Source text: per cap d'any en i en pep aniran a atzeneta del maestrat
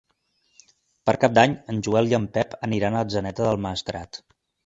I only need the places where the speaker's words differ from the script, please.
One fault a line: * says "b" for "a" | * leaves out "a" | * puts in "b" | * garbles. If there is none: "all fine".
* puts in "joel"